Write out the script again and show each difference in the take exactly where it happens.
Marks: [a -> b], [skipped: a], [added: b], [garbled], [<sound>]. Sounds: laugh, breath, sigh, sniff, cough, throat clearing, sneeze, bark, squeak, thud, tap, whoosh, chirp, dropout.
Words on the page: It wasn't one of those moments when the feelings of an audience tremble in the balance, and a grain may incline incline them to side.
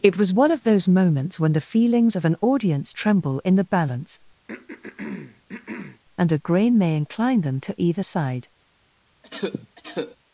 It [wasn't -> was] one of those moments when the feelings of an audience tremble in the balance, [throat clearing] and a grain may incline [skipped: incline] them to [added: either] side. [cough]